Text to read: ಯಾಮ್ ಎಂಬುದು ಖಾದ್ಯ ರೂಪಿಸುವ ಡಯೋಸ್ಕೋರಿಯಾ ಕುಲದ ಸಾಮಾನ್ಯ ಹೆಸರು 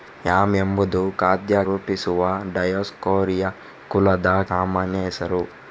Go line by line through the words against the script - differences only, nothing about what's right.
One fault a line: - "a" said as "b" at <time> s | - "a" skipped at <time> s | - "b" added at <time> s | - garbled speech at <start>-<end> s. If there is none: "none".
none